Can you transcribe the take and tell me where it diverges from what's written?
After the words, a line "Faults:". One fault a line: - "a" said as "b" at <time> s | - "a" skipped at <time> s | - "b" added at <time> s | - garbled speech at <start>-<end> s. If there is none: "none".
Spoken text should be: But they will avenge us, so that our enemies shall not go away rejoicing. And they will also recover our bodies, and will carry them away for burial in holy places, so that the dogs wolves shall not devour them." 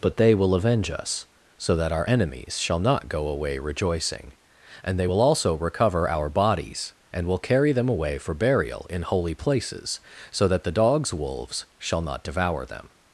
But they will avenge us, so that our enemies shall not go away rejoicing. And they will also recover our bodies, and will carry them away for burial in holy places, so that the dogs wolves shall not devour them."
Faults:
none